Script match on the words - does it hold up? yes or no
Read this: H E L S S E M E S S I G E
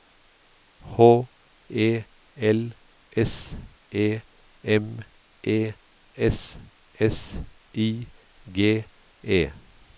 no